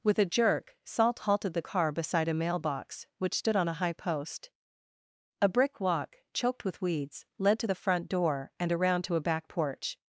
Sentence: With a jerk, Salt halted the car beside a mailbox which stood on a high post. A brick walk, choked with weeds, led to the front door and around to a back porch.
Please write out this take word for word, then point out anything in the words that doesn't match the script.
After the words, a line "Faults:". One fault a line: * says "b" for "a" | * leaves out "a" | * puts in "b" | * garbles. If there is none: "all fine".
With a jerk, Salt halted the car beside a mailbox which stood on a high post. A brick walk, choked with weeds, led to the front door and around to a back porch.
Faults:
all fine